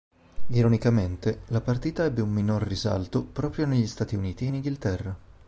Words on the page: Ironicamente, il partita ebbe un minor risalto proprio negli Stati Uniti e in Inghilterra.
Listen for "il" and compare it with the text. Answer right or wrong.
wrong